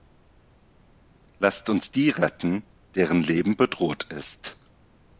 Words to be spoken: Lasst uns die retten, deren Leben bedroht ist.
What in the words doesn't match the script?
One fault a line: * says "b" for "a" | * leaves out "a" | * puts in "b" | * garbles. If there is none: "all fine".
all fine